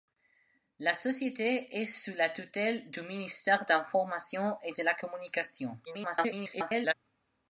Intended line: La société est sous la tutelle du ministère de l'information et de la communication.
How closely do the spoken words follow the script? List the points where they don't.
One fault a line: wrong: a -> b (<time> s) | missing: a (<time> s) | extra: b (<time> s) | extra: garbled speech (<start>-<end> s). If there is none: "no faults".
extra: garbled speech (5.9-6.9 s)